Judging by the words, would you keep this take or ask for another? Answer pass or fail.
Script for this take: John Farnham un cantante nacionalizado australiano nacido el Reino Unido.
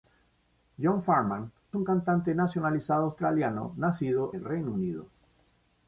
pass